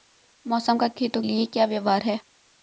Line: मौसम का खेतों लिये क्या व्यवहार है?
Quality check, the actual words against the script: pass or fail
pass